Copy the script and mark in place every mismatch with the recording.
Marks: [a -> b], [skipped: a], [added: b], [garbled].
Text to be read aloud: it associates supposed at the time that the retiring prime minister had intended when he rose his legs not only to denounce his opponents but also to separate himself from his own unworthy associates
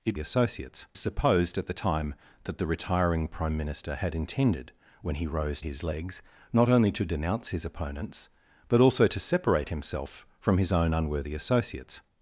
it associates supposed at the time that the retiring prime minister had intended when he rose his legs not only to denounce his opponents but also to separate himself from his own unworthy associates